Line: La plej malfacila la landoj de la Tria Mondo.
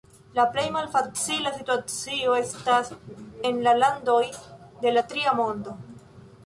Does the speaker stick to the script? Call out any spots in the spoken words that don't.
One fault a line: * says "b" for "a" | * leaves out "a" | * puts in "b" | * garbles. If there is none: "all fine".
* puts in "situacio estas en"